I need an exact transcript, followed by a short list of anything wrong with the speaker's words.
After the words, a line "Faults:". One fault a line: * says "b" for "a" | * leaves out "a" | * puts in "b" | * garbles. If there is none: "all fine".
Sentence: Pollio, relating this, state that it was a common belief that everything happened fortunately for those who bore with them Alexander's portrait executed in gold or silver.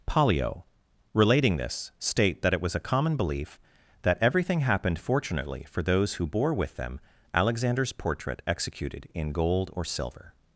Pollio, relating this, state that it was a common belief that everything happened fortunately for those who bore with them Alexander's portrait executed in gold or silver.
Faults:
all fine